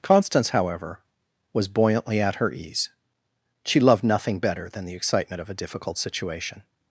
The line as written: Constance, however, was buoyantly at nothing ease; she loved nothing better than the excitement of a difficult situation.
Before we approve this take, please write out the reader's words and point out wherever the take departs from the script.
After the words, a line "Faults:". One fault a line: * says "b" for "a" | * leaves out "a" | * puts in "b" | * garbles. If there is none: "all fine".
Constance, however, was buoyantly at her ease; she loved nothing better than the excitement of a difficult situation.
Faults:
* says "her" for "nothing"